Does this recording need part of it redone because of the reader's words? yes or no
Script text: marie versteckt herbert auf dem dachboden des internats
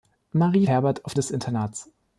yes